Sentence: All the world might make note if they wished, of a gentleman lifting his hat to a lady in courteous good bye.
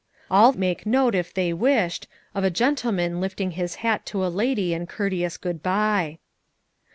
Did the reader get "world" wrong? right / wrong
wrong